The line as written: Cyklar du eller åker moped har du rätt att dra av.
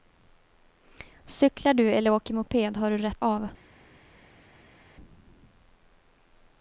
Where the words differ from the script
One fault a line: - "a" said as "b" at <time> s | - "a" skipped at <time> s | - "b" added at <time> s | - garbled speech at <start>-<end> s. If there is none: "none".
- "att dra" skipped at 3.2 s